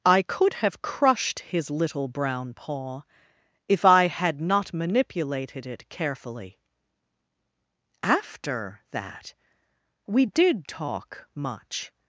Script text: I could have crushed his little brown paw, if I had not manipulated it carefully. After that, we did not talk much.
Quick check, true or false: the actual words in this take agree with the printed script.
false